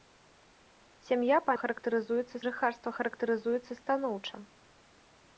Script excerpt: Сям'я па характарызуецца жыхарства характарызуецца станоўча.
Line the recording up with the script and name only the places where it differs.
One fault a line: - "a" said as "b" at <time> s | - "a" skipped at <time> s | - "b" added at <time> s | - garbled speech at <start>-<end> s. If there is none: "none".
none